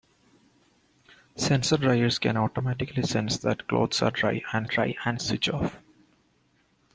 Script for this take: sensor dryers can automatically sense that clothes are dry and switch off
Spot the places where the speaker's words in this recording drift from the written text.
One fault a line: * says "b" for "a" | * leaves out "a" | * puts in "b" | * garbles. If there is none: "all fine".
* puts in "dry and"